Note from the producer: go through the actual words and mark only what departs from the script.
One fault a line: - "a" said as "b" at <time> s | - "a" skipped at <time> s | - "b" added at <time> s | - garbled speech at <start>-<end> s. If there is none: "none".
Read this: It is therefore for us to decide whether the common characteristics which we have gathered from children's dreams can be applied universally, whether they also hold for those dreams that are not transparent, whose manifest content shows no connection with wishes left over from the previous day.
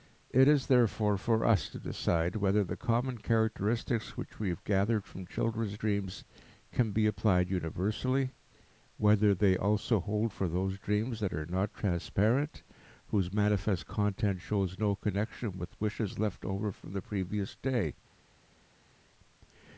none